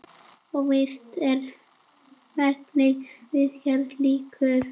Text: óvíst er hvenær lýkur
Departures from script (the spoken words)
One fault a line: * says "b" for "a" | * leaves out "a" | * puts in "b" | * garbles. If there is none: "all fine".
* puts in "viðgerð"